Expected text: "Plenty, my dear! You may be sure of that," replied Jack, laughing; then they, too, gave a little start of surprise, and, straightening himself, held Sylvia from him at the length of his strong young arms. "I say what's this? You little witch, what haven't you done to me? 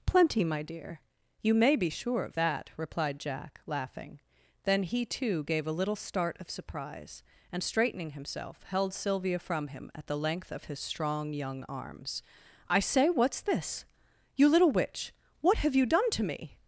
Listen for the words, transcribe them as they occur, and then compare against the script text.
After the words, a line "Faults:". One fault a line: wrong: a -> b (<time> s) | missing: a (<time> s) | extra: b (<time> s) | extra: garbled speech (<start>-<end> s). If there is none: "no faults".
"Plenty, my dear! You may be sure of that," replied Jack, laughing; then he, too, gave a little start of surprise, and, straightening himself, held Sylvia from him at the length of his strong young arms. "I say what's this? You little witch, what have you done to me?
Faults:
wrong: they -> he (4.8 s)
wrong: haven't -> have (15.6 s)